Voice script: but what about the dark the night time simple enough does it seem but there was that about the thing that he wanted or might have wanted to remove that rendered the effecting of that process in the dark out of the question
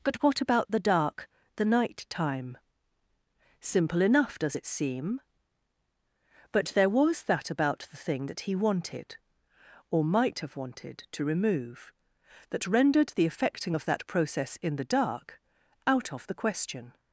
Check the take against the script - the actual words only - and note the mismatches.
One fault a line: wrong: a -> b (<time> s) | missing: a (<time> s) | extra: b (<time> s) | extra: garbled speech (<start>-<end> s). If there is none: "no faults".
no faults